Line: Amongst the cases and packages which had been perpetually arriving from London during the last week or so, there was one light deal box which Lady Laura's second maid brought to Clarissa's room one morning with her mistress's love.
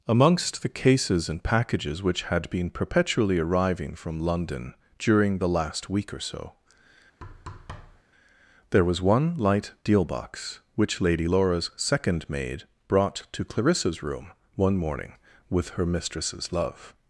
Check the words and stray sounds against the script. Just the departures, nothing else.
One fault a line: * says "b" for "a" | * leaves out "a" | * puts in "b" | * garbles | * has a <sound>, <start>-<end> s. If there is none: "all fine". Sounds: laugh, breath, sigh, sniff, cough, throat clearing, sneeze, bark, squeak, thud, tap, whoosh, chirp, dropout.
* has a thud, 7.2-8.0 s